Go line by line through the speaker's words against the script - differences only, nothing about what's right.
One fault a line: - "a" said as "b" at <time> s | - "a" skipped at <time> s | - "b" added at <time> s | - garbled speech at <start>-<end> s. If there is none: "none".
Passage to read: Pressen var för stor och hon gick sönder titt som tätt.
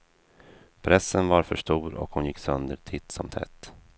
none